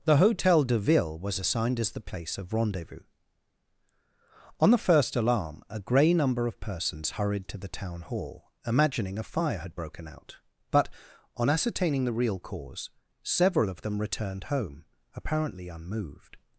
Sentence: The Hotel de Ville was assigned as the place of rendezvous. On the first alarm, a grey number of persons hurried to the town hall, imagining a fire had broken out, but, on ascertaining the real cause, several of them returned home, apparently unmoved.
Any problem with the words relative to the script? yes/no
no